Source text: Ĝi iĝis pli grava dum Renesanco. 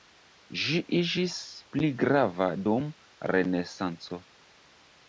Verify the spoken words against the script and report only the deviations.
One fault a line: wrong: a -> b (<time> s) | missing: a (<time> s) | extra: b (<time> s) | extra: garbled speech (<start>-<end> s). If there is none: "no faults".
no faults